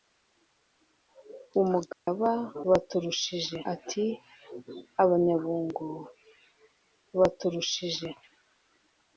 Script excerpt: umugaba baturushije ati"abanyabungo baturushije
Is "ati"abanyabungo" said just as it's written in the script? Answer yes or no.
yes